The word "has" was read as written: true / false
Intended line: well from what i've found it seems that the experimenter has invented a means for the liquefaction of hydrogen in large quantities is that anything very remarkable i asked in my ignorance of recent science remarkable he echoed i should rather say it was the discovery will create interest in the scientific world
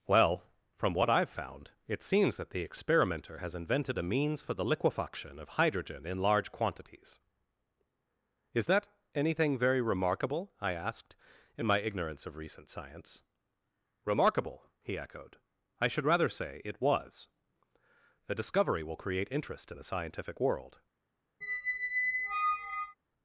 true